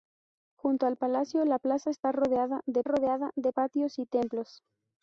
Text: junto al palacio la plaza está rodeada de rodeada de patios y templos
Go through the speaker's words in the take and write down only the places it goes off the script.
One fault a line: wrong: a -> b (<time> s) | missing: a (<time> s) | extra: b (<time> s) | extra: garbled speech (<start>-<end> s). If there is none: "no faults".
no faults